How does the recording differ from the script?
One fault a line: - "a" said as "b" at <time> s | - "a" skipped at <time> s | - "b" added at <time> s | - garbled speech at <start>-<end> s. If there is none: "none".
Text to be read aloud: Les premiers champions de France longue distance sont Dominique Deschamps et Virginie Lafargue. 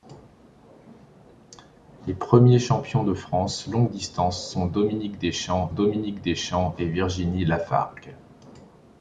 - "Dominique Deschamps" added at 5.7 s